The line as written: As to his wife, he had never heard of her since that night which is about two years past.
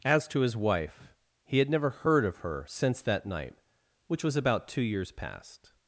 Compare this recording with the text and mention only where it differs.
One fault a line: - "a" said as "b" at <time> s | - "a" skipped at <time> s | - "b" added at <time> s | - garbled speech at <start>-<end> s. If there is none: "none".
- "is" said as "was" at 4.2 s